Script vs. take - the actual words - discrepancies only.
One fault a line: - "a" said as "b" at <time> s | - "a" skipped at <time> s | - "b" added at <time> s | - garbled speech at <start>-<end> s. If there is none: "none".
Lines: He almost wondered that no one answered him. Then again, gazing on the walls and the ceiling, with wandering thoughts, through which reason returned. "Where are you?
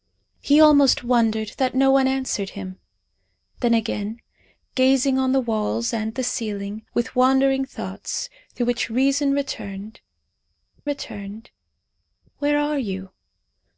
- "returned" added at 10.8 s